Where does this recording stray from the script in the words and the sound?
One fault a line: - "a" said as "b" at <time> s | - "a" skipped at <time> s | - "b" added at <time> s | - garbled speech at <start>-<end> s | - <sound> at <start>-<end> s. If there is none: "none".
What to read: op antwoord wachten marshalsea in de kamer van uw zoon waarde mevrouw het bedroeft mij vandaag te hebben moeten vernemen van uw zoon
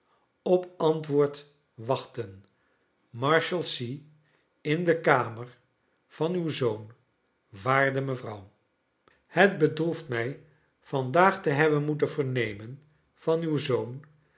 none